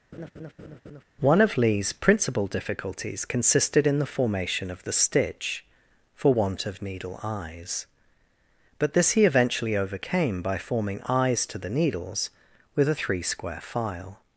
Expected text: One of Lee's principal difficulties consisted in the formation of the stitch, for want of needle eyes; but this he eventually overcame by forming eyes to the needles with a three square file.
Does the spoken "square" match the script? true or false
true